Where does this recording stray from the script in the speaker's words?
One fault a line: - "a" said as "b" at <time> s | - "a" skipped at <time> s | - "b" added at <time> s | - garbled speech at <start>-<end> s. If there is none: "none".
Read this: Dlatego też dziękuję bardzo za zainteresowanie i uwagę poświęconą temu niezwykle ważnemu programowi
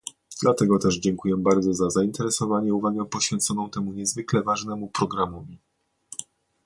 none